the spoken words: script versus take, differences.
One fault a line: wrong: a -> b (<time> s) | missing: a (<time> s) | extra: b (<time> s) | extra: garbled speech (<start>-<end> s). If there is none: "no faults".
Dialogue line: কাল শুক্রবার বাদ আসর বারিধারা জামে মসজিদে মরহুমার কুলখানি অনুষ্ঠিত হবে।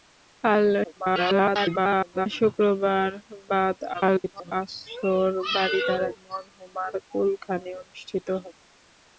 extra: garbled speech (0.8-2.3 s)
extra: garbled speech (3.9-4.5 s)
missing: জামে মসজিদে (6.1 s)